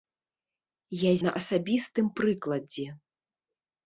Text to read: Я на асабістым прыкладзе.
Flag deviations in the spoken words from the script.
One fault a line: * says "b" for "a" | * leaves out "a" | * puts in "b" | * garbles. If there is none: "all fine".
all fine